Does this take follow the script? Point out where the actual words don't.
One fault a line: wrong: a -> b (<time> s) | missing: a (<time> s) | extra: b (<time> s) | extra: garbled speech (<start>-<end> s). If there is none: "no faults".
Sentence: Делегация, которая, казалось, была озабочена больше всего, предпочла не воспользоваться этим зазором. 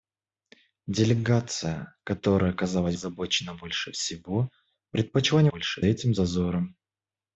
missing: была (3.0 s)
wrong: воспользоваться -> больше (5.5 s)